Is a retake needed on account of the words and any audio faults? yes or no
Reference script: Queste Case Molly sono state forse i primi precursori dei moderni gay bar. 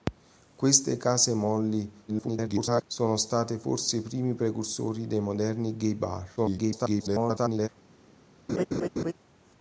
yes